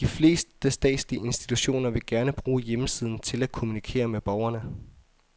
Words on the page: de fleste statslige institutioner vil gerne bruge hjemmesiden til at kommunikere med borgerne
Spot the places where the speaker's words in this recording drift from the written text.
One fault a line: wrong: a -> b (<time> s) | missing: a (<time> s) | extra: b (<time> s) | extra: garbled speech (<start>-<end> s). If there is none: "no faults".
no faults